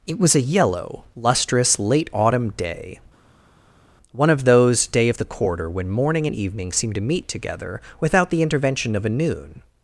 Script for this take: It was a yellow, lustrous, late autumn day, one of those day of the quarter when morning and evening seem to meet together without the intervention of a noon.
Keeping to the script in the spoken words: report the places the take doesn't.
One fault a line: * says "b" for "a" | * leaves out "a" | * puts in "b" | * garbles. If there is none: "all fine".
all fine